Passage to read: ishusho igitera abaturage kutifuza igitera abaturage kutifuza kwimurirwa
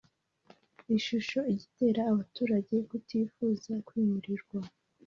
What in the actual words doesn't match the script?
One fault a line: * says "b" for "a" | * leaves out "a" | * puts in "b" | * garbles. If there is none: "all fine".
* leaves out "igitera abaturage kutifuza"